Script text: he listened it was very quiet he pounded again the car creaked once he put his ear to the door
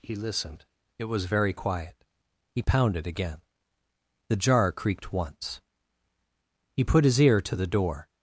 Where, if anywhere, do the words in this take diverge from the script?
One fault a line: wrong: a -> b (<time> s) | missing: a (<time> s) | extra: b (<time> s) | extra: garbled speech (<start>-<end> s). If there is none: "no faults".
wrong: car -> jar (4.4 s)